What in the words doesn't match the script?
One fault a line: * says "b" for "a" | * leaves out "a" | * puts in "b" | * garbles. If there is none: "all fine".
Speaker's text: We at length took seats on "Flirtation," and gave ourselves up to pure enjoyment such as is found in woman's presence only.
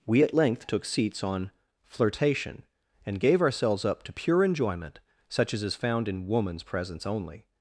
all fine